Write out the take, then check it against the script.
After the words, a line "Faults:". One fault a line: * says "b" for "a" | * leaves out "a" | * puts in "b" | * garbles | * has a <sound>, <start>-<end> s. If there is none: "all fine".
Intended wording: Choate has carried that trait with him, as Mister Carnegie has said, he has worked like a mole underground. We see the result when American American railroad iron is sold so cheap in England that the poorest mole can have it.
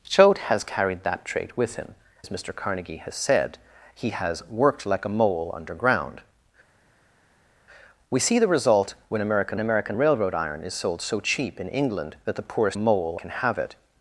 Choate has carried that trait with him, as Mister Carnegie has said, he has worked like a mole underground. We see the result when American American railroad iron is sold so cheap in England that the poorest mole can have it.
Faults:
all fine